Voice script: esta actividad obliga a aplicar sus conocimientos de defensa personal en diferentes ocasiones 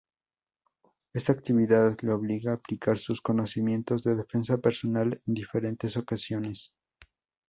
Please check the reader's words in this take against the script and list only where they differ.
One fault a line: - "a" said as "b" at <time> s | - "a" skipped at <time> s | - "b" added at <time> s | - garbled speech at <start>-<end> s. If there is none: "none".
- "le" added at 2.0 s